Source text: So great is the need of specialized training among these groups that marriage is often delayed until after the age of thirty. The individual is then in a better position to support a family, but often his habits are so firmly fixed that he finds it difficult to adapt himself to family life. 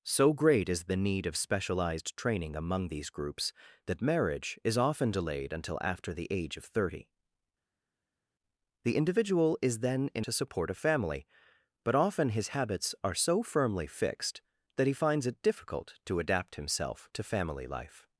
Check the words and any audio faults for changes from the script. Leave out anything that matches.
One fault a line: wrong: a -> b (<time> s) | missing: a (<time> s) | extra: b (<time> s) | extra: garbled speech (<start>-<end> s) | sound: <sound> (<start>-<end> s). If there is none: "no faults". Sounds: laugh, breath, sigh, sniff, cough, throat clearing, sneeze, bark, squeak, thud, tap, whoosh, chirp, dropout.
missing: a better position (10.3 s)